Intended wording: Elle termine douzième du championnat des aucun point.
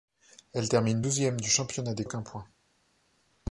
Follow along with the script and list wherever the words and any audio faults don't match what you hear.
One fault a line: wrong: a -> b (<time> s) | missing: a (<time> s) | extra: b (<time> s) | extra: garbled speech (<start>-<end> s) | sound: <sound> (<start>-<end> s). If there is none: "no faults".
no faults